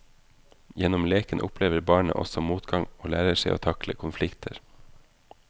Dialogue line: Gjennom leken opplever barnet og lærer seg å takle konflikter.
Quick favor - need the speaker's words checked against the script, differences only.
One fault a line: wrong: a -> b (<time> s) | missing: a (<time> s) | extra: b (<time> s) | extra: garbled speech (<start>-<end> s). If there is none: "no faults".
extra: også motgang (2.2 s)